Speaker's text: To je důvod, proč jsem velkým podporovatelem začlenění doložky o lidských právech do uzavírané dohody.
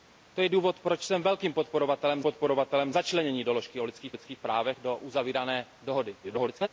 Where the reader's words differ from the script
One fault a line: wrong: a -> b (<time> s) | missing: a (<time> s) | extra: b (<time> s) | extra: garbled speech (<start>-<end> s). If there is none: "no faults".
extra: podporovatelem (2.2 s)
extra: lidských (4.1 s)
extra: garbled speech (6.2-6.7 s)